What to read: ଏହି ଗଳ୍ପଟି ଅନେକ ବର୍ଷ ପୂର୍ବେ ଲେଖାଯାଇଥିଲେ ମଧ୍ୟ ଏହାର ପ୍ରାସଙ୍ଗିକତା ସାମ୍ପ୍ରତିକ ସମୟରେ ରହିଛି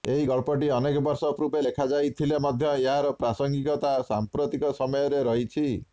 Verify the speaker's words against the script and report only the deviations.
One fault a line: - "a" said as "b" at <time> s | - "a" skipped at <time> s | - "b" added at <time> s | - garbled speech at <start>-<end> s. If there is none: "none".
none